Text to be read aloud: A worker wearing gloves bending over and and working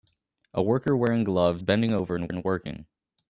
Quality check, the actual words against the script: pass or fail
pass